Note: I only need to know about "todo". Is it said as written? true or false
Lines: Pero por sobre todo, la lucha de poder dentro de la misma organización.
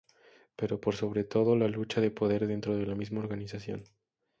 true